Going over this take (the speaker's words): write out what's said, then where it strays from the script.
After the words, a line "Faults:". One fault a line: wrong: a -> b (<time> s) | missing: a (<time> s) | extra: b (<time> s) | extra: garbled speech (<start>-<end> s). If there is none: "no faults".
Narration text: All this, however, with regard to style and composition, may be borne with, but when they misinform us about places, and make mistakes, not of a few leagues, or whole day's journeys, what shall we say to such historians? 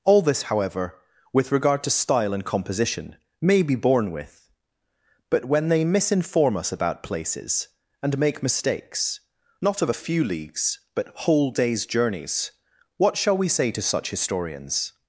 All this, however, with regard to style and composition, may be borne with, but when they misinform us about places, and make mistakes, not of a few leagues, but whole day's journeys, what shall we say to such historians?
Faults:
wrong: or -> but (10.9 s)